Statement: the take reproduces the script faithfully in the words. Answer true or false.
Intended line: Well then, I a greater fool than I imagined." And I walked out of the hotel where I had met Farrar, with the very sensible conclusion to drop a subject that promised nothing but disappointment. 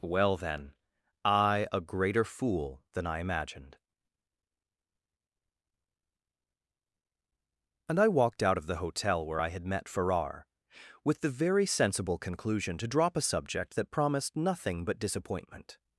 true